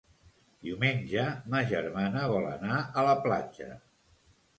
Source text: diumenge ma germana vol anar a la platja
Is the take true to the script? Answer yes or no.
yes